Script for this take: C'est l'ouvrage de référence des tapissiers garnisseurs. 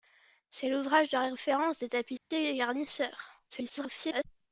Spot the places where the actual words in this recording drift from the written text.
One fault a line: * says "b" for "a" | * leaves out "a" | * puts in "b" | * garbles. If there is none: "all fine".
* garbles